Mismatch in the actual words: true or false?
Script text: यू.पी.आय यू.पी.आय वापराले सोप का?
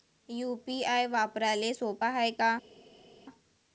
true